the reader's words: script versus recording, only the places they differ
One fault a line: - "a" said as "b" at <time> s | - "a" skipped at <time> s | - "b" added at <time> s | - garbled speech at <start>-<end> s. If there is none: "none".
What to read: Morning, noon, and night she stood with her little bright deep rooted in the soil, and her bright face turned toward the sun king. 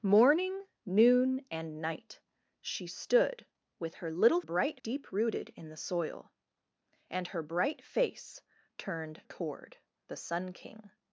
none